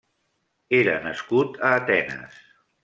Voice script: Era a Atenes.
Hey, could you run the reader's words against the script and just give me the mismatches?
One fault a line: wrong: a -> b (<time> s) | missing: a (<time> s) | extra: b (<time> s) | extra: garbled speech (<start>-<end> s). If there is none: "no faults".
extra: nascut (1.0 s)